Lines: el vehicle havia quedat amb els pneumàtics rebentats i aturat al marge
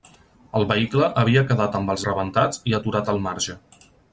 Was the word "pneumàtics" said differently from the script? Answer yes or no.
yes